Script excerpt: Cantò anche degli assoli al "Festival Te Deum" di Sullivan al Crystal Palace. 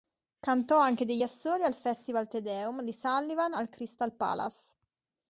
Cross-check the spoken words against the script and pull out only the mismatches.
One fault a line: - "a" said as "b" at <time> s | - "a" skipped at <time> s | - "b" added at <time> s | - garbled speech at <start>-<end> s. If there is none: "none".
none